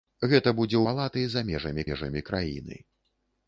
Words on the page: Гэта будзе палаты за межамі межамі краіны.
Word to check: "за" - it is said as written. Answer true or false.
true